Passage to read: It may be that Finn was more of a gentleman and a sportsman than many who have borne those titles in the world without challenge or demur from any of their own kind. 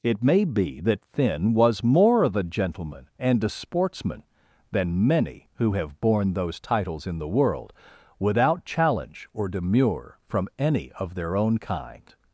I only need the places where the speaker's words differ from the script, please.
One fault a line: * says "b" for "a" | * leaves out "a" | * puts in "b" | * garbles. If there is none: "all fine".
all fine